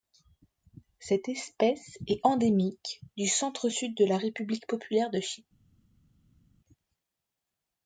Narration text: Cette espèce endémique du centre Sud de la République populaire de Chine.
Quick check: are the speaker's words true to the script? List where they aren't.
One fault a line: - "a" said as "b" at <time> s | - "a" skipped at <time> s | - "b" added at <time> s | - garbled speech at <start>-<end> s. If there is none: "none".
- "est" added at 2.1 s